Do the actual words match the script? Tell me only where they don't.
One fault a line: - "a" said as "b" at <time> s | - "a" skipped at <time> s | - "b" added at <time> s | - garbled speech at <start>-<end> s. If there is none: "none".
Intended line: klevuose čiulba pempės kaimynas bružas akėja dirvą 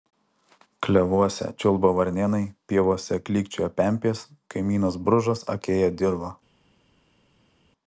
- "varnėnai pievose klykčioja" added at 2.0 s